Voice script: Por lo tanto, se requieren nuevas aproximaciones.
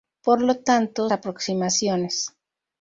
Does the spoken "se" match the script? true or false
false